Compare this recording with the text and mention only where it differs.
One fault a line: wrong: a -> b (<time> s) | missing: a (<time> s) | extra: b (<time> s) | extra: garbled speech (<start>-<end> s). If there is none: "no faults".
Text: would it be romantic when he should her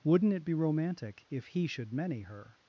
wrong: would -> wouldn't (0.0 s)
wrong: when -> if (1.3 s)
extra: many (1.9 s)